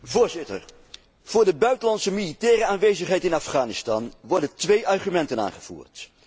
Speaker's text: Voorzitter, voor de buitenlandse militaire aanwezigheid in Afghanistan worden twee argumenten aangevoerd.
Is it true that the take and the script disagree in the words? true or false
false